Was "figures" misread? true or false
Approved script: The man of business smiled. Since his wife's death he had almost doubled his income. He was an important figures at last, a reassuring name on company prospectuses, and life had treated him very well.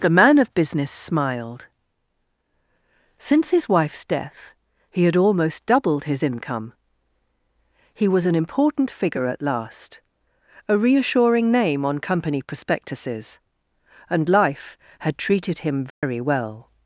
true